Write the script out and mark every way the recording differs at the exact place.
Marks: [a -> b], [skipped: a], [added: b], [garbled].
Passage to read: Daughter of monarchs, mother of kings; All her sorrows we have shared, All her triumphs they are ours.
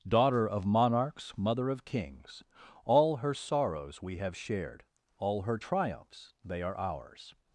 Daughter of monarchs, mother of kings; All her sorrows we have shared, All her triumphs they are ours.